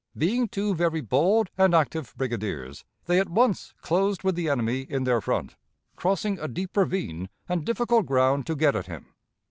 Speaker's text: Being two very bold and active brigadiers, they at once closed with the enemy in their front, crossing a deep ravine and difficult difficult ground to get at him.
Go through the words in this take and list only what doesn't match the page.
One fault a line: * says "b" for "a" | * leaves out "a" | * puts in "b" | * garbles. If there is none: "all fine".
* leaves out "difficult"